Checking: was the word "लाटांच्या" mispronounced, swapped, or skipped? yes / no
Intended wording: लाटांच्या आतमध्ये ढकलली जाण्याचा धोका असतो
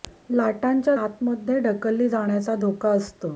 no